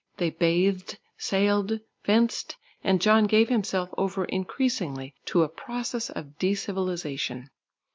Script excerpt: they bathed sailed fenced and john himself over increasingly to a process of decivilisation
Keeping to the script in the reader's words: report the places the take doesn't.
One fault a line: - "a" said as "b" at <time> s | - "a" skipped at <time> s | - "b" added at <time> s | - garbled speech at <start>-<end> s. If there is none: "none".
- "gave" added at 3.2 s